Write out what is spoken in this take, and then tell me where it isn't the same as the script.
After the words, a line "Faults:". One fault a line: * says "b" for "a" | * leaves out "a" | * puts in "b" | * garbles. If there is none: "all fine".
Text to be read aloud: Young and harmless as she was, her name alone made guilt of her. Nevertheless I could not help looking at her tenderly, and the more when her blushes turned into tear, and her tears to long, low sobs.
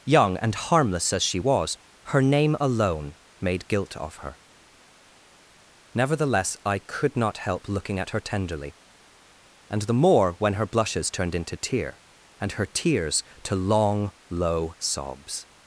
Young and harmless as she was, her name alone made guilt of her. Nevertheless I could not help looking at her tenderly, and the more when her blushes turned into tear, and her tears to long, low sobs.
Faults:
all fine